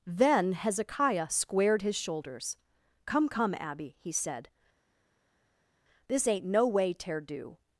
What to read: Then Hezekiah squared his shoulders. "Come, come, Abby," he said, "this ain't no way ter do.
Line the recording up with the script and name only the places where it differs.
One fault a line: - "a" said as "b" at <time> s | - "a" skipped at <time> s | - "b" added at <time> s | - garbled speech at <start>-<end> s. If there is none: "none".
none